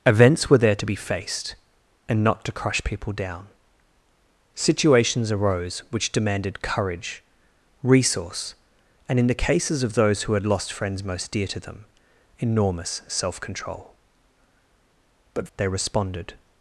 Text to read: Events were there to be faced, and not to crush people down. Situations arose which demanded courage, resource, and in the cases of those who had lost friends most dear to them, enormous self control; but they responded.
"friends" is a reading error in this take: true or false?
false